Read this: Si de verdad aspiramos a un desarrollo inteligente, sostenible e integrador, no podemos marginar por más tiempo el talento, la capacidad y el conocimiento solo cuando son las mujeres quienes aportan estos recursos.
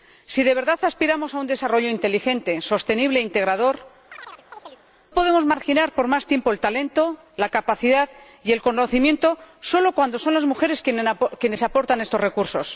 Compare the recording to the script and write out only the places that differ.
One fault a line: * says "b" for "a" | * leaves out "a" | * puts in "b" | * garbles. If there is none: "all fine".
* leaves out "no"